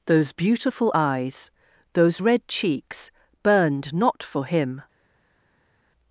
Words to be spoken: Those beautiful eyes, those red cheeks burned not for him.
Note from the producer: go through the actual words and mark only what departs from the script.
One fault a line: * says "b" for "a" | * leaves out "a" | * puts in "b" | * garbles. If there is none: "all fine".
all fine